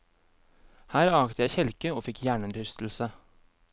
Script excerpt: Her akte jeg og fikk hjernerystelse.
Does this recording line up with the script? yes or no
no